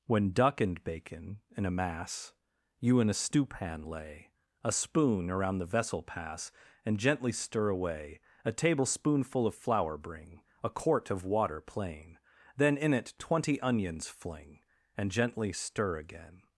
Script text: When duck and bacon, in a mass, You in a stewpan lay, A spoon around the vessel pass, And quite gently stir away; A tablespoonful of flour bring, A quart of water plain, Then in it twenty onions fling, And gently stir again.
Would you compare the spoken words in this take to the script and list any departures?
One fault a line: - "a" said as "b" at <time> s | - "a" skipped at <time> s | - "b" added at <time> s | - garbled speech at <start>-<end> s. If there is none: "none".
- "quite" skipped at 7.0 s